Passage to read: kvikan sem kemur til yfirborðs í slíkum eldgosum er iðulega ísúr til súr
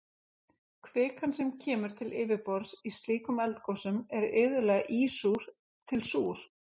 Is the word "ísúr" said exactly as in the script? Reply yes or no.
yes